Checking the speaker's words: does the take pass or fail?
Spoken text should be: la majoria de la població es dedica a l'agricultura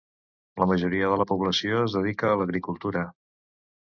pass